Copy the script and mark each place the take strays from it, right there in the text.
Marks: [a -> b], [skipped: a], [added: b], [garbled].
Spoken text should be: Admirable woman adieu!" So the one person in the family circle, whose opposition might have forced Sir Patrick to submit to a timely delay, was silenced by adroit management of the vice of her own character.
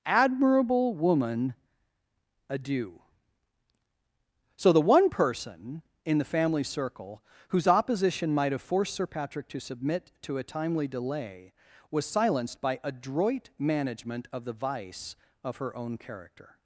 Admirable woman adieu!" So the one person in the family circle, whose opposition might have forced Sir Patrick to submit to a timely delay, was silenced by adroit management of the vice of her own character.